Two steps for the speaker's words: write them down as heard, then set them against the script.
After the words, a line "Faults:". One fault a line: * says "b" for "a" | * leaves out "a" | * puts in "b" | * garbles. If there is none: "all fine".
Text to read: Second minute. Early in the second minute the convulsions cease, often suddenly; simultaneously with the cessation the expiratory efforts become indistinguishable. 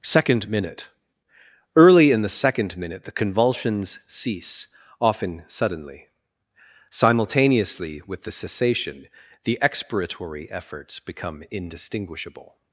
Second minute. Early in the second minute the convulsions cease, often suddenly; simultaneously with the cessation the expiratory efforts become indistinguishable.
Faults:
all fine